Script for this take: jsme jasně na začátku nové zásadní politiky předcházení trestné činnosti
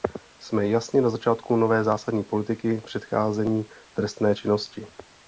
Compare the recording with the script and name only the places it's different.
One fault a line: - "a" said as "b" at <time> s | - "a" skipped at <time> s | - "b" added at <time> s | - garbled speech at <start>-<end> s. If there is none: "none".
none